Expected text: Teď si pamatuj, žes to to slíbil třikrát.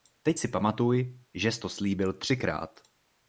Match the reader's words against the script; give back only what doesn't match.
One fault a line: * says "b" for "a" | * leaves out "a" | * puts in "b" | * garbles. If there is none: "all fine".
* leaves out "to"